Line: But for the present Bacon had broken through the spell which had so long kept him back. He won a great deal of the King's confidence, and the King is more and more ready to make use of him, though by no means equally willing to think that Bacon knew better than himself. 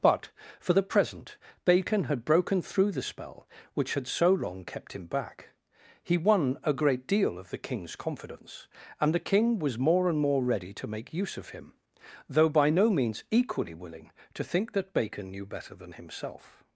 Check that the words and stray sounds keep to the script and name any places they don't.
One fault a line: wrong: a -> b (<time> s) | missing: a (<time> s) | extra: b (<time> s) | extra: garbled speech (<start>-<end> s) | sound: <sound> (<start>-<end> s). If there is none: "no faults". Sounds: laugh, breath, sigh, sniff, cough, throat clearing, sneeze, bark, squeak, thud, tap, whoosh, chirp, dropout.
wrong: is -> was (9.6 s)